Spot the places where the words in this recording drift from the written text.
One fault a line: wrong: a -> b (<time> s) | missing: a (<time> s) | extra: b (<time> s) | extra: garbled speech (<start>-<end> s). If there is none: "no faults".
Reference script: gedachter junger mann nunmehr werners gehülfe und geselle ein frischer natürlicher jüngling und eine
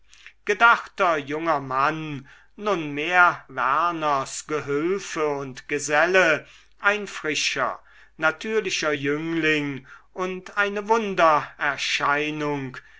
no faults